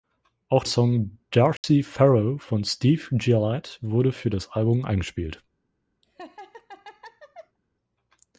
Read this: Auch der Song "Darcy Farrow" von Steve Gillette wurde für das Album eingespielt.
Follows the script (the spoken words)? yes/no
no